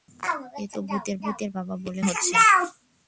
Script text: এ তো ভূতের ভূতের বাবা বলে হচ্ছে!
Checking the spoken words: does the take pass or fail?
pass